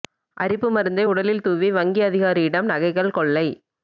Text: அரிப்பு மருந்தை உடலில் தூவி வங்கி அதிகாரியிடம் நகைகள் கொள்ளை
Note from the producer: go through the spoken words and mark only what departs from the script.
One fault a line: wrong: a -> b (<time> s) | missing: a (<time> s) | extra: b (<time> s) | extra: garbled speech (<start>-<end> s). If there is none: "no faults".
no faults